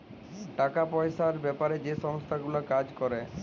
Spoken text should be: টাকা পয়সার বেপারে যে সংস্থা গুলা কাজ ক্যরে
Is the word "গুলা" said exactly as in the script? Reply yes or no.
yes